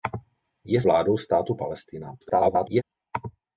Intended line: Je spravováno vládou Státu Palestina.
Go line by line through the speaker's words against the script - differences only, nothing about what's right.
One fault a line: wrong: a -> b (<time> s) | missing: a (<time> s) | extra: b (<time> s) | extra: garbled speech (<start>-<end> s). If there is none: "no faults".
missing: spravováno (0.8 s)
extra: garbled speech (2.2-2.8 s)